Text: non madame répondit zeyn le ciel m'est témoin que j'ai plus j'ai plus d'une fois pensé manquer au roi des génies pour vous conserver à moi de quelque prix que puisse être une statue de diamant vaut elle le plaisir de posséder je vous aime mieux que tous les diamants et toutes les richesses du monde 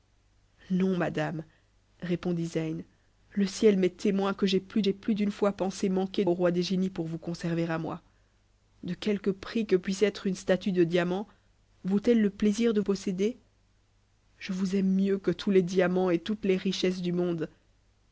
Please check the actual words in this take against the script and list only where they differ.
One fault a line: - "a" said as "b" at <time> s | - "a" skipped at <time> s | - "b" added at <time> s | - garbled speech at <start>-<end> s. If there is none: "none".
none